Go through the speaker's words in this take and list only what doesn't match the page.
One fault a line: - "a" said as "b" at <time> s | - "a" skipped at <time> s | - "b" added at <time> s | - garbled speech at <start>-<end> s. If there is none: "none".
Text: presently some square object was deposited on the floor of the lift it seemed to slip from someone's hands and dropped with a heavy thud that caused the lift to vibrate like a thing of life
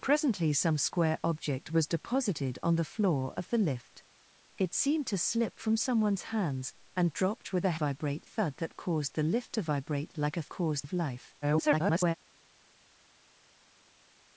- "heavy" said as "vibrate" at 7.7 s
- "thing" said as "caused" at 10.5 s
- garbled speech at 11.4-12.1 s